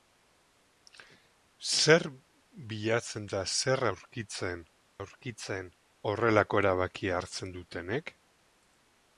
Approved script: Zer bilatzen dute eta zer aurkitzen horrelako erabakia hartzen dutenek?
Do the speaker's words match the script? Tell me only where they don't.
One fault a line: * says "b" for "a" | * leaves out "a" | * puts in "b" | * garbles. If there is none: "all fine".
* leaves out "dute"
* puts in "aurkitzen"